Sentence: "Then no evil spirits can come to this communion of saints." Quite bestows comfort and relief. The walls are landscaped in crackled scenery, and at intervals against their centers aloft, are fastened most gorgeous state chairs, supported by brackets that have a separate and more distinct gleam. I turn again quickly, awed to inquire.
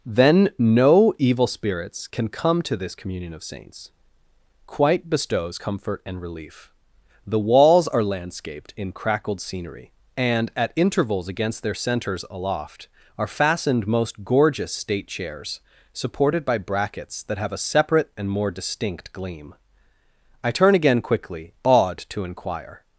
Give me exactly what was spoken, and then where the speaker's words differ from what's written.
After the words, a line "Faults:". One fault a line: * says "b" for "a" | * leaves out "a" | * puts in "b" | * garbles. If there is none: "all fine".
"Then no evil spirits can come to this communion of saints." Quite bestows comfort and relief. The walls are landscaped in crackled scenery, and at intervals against their centers aloft, are fastened most gorgeous state chairs, supported by brackets that have a separate and more distinct gleam. I turn again quickly, awed to inquire.
Faults:
all fine